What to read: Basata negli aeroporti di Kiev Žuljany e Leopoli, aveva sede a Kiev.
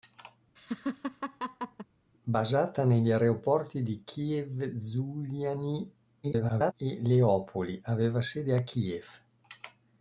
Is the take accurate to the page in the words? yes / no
no